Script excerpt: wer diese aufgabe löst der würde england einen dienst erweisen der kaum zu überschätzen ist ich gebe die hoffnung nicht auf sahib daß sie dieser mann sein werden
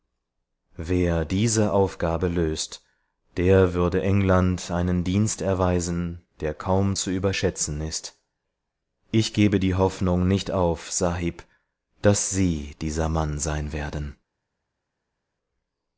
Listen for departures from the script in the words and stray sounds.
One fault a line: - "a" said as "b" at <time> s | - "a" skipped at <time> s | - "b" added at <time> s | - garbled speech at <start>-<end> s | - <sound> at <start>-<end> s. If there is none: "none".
none